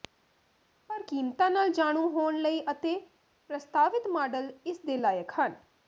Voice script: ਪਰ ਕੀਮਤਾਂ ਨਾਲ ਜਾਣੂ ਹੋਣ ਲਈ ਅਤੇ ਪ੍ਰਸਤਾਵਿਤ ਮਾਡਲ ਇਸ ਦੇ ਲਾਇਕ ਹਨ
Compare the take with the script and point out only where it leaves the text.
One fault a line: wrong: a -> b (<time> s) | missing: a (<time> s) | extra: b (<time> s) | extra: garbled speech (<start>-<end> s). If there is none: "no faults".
no faults